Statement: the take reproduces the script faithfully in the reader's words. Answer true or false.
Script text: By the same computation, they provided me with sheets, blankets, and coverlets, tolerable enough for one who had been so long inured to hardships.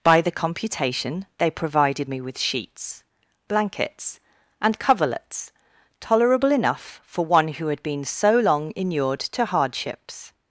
false